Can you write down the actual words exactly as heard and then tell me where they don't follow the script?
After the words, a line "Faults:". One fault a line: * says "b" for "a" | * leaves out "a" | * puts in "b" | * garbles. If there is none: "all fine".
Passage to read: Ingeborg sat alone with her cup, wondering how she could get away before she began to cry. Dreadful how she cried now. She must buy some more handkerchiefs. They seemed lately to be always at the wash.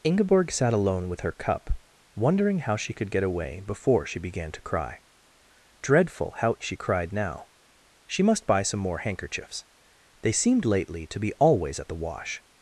Ingeborg sat alone with her cup, wondering how she could get away before she began to cry. Dreadful how she cried now. She must buy some more handkerchiefs. They seemed lately to be always at the wash.
Faults:
all fine